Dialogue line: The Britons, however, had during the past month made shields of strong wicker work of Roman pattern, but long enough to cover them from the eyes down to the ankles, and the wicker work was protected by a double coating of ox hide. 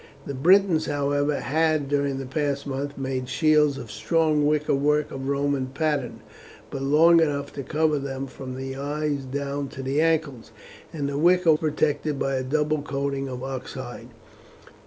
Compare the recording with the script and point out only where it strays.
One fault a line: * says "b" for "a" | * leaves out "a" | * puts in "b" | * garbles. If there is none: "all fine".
* leaves out "work was"